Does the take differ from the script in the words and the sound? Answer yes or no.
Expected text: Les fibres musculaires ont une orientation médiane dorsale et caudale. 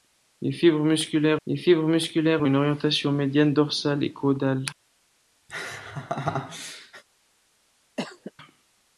yes